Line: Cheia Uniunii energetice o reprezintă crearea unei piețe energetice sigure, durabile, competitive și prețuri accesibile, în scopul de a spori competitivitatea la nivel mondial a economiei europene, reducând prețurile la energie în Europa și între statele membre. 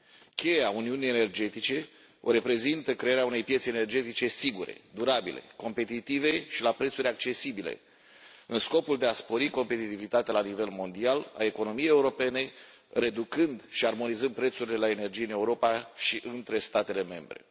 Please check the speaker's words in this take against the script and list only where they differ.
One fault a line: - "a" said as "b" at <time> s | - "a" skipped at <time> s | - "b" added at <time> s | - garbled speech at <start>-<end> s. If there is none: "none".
- "la" added at 6.6 s
- "și armonizând" added at 13.7 s